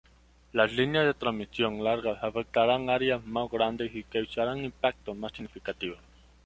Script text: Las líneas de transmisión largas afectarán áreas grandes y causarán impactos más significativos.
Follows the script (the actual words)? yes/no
no